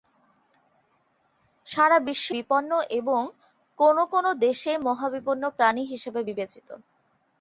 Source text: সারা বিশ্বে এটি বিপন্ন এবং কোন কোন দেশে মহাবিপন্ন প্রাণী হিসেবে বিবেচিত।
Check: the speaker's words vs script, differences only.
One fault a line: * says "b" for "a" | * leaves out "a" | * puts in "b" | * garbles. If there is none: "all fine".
* leaves out "এটি"